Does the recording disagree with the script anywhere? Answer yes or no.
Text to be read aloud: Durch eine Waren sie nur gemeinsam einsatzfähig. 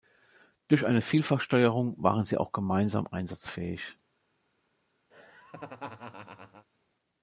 yes